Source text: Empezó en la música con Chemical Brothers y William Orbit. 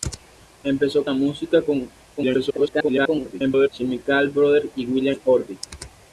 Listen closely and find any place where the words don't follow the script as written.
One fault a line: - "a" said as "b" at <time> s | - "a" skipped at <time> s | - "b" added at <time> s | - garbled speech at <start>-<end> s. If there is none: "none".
- "en" skipped at 1.1 s
- garbled speech at 2.2-3.7 s